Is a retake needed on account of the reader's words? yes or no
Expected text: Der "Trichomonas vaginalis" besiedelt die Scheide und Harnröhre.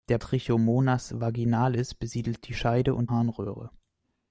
no